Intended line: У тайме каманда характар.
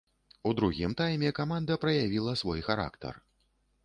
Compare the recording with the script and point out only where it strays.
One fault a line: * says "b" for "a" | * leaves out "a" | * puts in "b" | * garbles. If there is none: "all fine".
* puts in "другім"
* puts in "праявіла свой"